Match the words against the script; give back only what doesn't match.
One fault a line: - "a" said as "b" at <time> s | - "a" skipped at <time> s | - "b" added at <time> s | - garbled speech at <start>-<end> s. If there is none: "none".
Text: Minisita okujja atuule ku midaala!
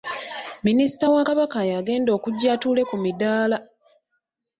- "wa Kabaka y'agenda" added at 1.1 s